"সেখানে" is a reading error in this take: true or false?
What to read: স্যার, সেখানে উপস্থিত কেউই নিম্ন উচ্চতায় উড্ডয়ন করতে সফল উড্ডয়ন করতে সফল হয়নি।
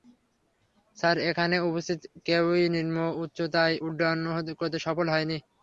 true